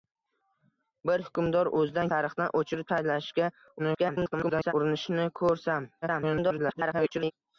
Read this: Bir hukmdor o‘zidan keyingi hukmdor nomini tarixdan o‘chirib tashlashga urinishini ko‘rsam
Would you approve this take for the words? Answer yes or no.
no